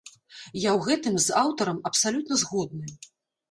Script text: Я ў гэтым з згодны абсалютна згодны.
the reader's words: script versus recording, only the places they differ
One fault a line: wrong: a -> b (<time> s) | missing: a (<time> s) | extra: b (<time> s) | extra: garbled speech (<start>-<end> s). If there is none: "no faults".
wrong: згодны -> аўтарам (1.4 s)